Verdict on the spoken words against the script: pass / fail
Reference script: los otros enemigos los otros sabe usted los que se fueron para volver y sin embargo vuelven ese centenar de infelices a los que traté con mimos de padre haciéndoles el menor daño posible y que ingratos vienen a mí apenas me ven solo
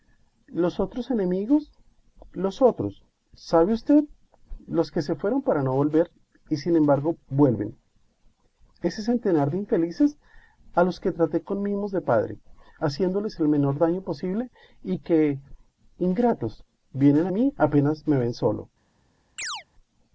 fail